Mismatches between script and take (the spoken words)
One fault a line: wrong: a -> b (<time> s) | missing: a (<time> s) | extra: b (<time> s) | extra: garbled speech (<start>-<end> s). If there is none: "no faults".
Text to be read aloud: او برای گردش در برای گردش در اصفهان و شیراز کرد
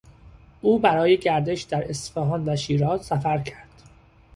missing: برای گردش در (1.9 s)
extra: سفر (3.0 s)